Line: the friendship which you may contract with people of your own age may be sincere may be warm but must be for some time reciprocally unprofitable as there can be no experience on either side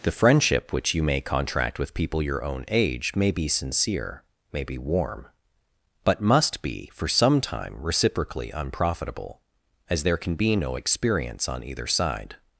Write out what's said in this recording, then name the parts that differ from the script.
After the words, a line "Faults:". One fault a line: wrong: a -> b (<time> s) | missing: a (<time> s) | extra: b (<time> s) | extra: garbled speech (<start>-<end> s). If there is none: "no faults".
the friendship which you may contract with people your own age may be sincere may be warm but must be for some time reciprocally unprofitable as there can be no experience on either side
Faults:
missing: of (2.2 s)